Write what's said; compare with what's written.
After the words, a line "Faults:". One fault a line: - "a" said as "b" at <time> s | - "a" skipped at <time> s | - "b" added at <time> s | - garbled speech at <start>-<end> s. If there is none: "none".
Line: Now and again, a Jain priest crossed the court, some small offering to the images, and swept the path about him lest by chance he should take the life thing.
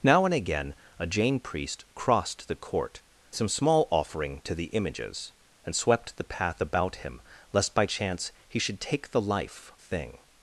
Now and again, a Jain priest crossed the court, some small offering to the images, and swept the path about him lest by chance he should take the life thing.
Faults:
none